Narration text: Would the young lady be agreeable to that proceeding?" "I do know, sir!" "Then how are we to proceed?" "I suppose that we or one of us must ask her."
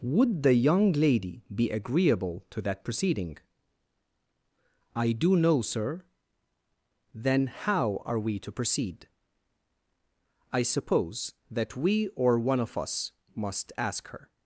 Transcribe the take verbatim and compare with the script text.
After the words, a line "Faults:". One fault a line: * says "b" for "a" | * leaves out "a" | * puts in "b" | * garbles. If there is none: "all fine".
Would the young lady be agreeable to that proceeding?" "I do know, sir!" "Then how are we to proceed?" "I suppose that we or one of us must ask her."
Faults:
all fine